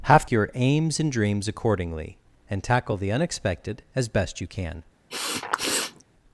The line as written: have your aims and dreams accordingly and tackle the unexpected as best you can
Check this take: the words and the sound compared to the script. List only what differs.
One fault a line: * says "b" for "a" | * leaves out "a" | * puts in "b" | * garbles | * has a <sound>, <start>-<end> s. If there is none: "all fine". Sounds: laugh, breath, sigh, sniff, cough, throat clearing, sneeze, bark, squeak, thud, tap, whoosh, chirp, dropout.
* has a sniff, 5.1-6.0 s